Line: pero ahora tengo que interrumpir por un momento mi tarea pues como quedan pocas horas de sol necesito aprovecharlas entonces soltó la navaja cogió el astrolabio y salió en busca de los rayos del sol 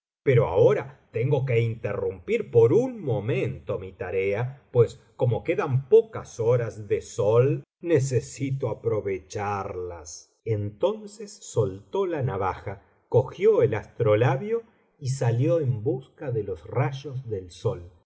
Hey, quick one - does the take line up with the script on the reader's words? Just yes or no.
yes